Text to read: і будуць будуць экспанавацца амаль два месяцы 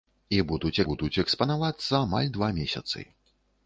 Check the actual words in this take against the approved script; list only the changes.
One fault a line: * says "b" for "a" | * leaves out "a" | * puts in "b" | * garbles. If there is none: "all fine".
all fine